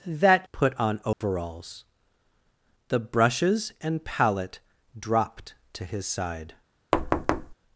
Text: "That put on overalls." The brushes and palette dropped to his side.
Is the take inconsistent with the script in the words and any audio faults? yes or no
yes